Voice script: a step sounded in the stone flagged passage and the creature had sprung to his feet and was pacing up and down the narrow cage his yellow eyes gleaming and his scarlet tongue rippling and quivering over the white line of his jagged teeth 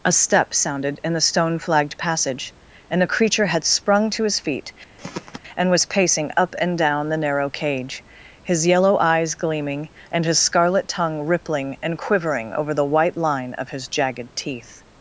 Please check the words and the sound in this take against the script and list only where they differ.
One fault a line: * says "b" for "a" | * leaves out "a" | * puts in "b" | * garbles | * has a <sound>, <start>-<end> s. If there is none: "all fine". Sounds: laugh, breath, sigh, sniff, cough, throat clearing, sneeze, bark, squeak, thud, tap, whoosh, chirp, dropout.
* says "a" for "the"
* has a throat clearing, 5.0-5.4 s